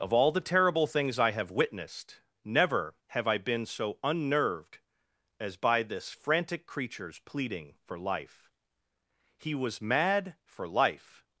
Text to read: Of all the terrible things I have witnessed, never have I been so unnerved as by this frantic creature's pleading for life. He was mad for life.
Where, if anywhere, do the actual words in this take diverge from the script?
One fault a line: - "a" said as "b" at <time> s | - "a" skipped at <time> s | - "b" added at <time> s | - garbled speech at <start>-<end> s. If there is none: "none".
none